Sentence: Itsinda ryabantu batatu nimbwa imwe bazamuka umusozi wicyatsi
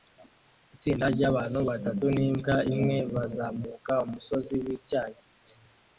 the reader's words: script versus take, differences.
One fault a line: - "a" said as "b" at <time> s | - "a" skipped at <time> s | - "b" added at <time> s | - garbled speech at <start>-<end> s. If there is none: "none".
none